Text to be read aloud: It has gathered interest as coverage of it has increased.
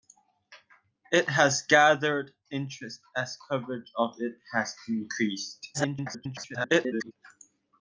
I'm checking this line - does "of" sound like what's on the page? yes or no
yes